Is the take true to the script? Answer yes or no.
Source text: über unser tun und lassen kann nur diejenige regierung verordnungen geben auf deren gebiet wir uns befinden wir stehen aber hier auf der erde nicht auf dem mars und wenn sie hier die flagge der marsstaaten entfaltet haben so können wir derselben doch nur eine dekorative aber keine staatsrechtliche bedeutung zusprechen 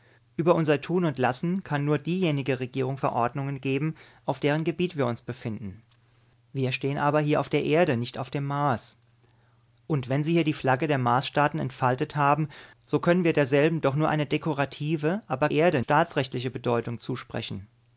no